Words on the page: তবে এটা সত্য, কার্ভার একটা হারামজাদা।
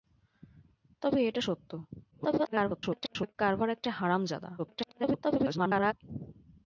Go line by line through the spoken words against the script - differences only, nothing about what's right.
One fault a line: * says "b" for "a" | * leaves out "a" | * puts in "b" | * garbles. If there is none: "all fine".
* garbles
* garbles